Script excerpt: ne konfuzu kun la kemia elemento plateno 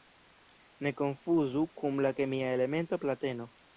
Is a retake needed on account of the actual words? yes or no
no